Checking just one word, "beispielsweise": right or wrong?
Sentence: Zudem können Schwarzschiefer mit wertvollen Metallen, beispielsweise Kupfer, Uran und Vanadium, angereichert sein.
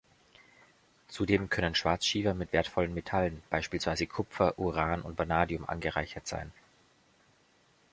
right